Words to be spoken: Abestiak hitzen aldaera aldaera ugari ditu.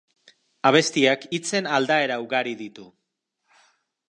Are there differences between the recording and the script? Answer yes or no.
yes